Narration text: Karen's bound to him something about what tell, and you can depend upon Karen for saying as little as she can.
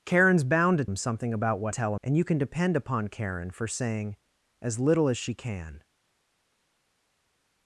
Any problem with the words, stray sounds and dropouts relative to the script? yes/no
no